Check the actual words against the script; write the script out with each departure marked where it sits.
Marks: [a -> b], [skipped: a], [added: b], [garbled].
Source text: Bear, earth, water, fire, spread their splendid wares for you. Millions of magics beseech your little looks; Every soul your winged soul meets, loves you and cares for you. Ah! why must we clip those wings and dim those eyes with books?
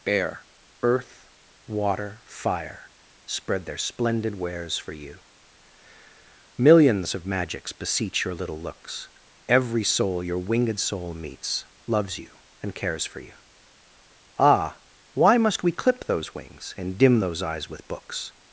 Bear, earth, water, fire, spread their splendid wares for you. Millions of magics beseech your little looks; Every soul your winged soul meets, loves you and cares for you. Ah! why must we clip those wings and dim those eyes with books?